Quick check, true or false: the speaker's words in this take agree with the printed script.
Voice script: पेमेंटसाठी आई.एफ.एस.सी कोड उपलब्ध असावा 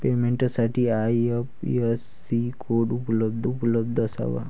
false